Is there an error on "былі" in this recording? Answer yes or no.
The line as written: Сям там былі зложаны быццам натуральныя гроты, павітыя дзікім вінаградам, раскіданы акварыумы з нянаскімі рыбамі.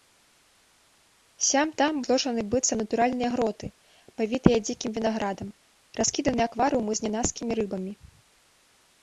yes